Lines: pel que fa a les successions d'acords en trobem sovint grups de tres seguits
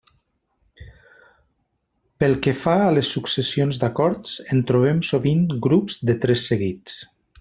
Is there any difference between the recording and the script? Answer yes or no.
no